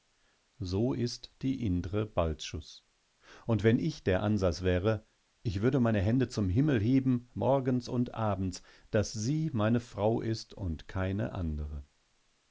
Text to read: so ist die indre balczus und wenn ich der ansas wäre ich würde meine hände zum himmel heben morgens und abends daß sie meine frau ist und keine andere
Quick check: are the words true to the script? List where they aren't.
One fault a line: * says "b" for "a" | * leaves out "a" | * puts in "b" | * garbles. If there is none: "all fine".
all fine